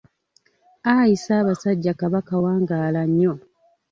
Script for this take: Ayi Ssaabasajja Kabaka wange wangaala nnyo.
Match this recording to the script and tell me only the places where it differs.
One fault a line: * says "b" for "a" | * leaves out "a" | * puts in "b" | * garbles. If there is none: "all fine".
* leaves out "wange"